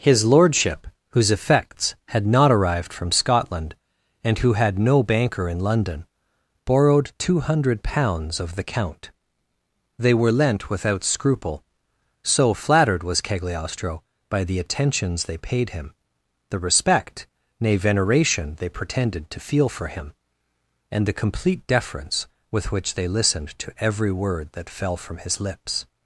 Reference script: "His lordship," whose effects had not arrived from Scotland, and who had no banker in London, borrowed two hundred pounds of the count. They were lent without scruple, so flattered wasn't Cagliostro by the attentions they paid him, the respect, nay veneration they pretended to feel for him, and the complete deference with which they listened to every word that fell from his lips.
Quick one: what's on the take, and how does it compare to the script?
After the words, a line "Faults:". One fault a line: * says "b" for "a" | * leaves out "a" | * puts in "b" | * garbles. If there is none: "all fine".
"His lordship," whose effects had not arrived from Scotland, and who had no banker in London, borrowed two hundred pounds of the count. They were lent without scruple, so flattered was Cagliostro by the attentions they paid him, the respect, nay veneration they pretended to feel for him, and the complete deference with which they listened to every word that fell from his lips.
Faults:
* says "was" for "wasn't"